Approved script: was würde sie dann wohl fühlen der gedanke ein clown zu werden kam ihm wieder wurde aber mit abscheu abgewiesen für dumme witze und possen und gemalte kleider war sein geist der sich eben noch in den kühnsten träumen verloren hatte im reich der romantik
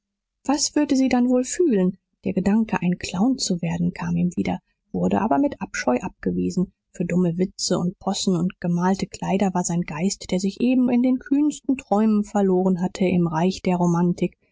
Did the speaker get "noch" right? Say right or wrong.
wrong